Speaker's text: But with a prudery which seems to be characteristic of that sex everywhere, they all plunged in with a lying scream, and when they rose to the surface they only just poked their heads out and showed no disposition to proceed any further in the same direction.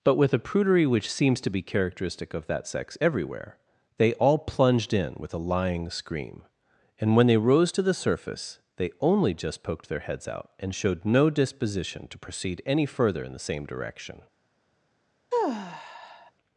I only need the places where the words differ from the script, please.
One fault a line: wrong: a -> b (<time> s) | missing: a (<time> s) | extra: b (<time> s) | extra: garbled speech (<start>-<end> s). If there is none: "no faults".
no faults